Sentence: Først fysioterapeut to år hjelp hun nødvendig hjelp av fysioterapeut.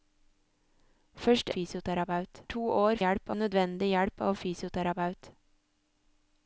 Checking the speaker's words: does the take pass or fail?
pass